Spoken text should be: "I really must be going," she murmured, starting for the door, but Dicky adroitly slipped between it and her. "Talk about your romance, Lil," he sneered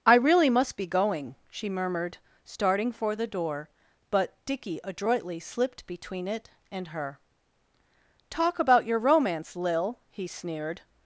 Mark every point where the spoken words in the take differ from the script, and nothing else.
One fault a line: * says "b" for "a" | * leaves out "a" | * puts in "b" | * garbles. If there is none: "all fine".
all fine